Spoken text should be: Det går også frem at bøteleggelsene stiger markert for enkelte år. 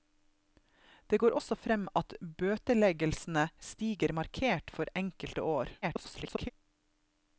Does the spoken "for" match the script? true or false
true